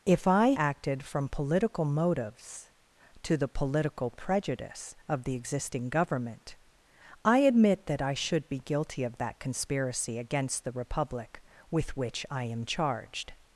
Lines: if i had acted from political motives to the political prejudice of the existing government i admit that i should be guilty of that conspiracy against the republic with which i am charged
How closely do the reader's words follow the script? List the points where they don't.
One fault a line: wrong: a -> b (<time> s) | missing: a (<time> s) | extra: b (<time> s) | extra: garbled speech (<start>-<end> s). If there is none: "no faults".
missing: had (0.5 s)